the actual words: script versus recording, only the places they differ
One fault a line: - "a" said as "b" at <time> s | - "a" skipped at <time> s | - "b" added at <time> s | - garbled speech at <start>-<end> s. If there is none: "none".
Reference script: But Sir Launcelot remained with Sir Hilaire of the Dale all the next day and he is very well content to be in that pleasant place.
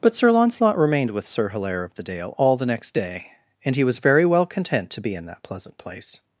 - "is" said as "was" at 3.8 s